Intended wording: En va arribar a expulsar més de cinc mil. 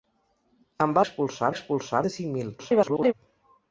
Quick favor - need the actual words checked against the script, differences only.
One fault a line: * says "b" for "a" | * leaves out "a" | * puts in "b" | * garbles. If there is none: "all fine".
* says "expulsar" for "arribar"
* leaves out "més"
* garbles